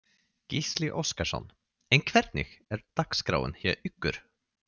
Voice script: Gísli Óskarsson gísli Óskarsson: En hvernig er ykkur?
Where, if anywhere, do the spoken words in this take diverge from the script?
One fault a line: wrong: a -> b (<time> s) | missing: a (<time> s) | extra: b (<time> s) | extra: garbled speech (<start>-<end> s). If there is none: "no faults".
missing: gísli Óskarsson (1.4 s)
extra: dagskráin hjá (3.0 s)